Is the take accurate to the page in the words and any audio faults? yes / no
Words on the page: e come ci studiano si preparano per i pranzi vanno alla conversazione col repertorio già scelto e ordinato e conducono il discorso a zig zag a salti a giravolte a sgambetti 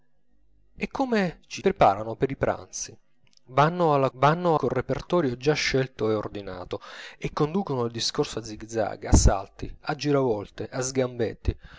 no